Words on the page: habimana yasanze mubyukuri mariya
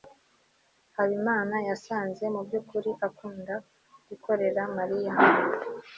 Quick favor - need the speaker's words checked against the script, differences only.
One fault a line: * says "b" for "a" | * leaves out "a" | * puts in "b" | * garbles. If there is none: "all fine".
* puts in "akunda gukorera"